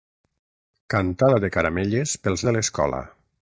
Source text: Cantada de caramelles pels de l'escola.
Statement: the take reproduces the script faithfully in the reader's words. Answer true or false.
true